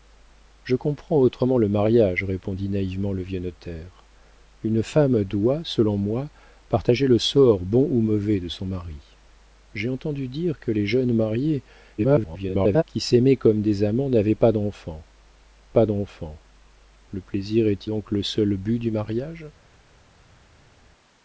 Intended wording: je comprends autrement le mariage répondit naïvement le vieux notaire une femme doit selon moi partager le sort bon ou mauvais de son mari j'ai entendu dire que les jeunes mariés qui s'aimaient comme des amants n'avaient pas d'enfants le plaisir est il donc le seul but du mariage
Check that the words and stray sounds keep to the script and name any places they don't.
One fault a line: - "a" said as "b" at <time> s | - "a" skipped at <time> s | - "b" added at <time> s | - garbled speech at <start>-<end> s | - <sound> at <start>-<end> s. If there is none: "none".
- garbled speech at 12.0-12.8 s
- "pas d'enfants" added at 15.7 s
- "il" skipped at 17.9 s